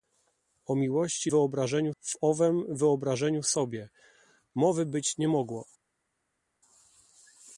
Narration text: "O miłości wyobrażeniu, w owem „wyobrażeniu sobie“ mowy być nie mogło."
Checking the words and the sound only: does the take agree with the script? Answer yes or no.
yes